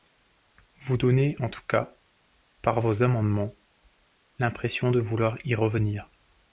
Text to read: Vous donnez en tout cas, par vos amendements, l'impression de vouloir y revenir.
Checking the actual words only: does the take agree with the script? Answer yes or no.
yes